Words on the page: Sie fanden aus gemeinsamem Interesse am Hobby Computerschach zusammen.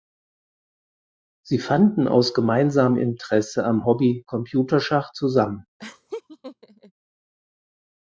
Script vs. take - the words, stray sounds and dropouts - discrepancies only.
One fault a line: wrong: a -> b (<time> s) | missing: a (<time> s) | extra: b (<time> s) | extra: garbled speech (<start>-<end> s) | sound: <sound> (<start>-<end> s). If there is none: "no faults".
sound: laugh (5.8-6.9 s)